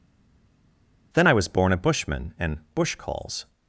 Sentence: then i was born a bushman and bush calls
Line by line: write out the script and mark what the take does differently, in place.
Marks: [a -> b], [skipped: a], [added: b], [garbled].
then i was born a bushman and bush calls